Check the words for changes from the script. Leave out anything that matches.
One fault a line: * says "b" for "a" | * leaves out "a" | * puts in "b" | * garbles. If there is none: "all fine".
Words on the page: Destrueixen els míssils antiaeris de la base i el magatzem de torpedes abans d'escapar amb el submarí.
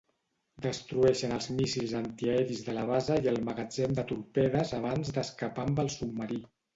all fine